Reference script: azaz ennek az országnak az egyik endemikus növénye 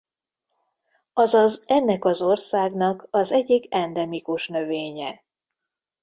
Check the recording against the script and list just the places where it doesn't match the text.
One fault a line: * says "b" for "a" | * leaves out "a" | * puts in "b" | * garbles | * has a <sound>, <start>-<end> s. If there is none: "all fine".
all fine